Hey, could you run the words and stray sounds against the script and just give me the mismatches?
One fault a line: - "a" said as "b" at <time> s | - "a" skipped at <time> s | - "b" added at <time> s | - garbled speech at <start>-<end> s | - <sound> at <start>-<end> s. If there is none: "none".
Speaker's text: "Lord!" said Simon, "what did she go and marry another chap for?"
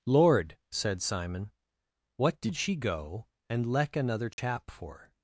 - "marry" said as "leck" at 3.7 s
- dropout at 4.3-4.4 s